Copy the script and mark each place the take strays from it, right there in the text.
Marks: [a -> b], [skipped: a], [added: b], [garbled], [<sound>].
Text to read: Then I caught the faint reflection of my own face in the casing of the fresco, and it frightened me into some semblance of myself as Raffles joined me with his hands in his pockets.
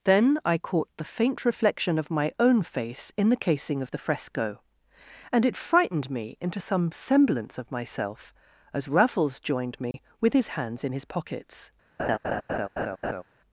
Then I caught the faint reflection of my own face in the casing of the fresco, and it frightened me into some semblance of myself as Raffles joined me [dropout] with his hands in his pockets. [laugh]